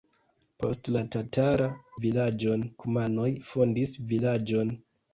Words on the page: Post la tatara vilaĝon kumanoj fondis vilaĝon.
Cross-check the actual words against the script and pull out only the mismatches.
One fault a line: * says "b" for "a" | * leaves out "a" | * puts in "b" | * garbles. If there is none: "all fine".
all fine